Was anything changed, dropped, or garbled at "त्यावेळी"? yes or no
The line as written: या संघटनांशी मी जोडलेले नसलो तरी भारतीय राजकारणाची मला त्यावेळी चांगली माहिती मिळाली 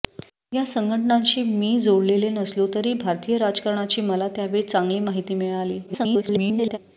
no